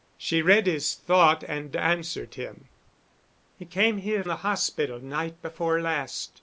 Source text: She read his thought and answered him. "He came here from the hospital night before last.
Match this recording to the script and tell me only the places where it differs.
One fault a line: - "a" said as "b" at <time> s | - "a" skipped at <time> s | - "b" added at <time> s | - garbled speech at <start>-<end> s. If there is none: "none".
- "from" skipped at 4.2 s